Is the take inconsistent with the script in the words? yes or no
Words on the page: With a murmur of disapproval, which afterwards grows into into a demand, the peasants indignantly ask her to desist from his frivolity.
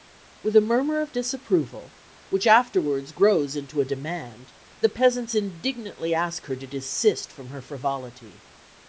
yes